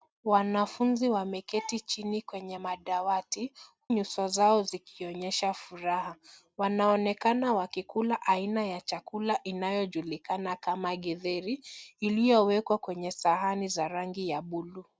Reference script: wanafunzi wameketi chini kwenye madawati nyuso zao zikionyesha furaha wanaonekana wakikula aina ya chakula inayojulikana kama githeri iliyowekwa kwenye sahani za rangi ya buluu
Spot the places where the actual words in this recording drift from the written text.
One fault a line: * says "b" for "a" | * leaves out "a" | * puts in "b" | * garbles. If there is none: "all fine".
all fine